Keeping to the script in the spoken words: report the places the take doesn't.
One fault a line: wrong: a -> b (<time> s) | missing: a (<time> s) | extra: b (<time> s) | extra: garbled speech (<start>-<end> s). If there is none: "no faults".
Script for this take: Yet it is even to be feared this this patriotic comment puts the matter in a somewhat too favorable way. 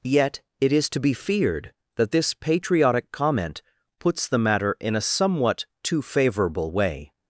missing: even (0.9 s)
wrong: this -> that (2.0 s)